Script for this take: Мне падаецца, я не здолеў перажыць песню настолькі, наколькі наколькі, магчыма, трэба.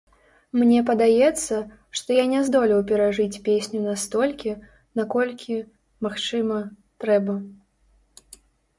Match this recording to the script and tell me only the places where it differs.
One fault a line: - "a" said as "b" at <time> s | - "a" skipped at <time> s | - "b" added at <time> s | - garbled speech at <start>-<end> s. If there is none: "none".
- "што" added at 2.0 s
- "наколькі" skipped at 5.6 s